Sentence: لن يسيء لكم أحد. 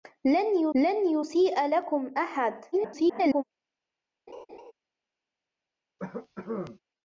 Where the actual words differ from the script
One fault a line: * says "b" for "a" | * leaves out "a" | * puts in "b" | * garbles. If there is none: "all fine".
* puts in "لن"
* garbles